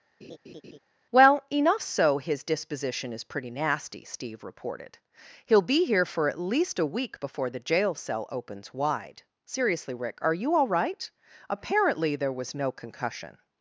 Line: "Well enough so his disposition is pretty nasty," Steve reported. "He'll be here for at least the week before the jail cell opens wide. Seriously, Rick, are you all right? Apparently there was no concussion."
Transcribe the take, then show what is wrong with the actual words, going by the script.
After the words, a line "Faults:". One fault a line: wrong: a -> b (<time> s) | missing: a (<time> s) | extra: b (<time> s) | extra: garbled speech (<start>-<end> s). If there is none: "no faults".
"Well enough so his disposition is pretty nasty," Steve reported. "He'll be here for at least a week before the jail cell opens wide. Seriously, Rick, are you all right? Apparently there was no concussion."
Faults:
wrong: the -> a (6.8 s)